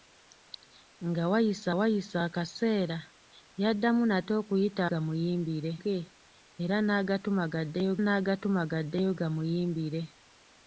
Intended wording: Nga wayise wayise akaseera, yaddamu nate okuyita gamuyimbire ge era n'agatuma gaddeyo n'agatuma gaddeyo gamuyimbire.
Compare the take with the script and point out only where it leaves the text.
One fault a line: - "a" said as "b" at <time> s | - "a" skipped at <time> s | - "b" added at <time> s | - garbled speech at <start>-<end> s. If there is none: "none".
none